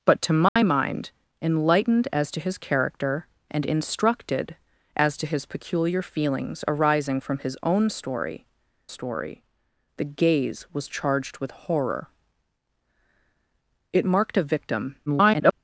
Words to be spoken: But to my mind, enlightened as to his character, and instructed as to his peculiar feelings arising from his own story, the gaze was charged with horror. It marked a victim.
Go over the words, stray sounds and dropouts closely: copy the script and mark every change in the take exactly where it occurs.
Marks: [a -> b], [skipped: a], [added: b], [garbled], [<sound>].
But to my [dropout] mind, enlightened as to his character, and instructed as to his peculiar feelings arising from his own story, [added: story] the gaze was charged with horror. It marked a victim. [garbled]